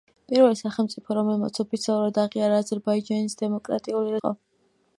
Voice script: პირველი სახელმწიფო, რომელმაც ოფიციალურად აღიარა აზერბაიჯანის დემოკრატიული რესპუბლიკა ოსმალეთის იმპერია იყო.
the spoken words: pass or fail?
fail